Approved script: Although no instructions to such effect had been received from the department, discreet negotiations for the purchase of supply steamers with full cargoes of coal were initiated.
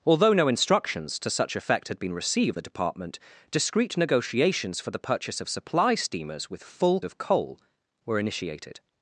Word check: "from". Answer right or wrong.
wrong